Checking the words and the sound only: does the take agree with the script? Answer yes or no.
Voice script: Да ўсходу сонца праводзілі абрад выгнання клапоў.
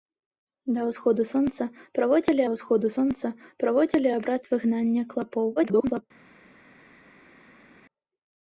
no